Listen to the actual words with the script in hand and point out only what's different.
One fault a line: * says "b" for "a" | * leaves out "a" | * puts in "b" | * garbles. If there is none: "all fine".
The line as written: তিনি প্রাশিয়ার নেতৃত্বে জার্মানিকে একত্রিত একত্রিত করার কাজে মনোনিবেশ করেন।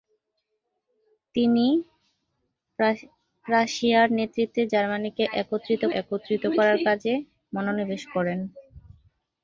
all fine